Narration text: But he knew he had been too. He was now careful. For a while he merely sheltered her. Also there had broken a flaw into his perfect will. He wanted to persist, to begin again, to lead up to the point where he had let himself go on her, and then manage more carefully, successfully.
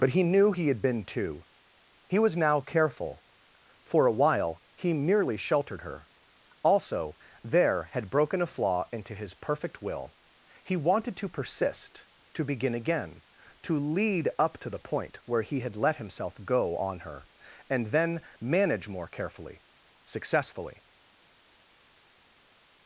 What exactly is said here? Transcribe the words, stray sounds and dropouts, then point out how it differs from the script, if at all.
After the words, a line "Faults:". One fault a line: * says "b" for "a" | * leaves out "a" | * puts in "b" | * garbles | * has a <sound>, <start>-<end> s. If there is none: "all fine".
But he knew he had been too. He was now careful. For a while he merely sheltered her. Also there had broken a flaw into his perfect will. He wanted to persist, to begin again, to lead up to the point where he had let himself go on her, and then manage more carefully, successfully.
Faults:
all fine